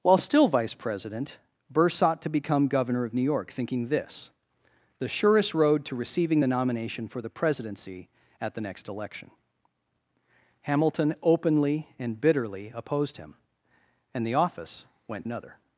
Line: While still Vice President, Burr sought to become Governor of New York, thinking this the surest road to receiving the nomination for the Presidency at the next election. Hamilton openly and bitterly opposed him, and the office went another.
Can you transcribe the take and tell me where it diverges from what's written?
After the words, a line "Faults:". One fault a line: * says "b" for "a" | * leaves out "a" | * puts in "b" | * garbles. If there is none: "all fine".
While still Vice President, Burr sought to become Governor of New York, thinking this the surest road to receiving the nomination for the Presidency at the next election. Hamilton openly and bitterly opposed him, and the office went another.
Faults:
all fine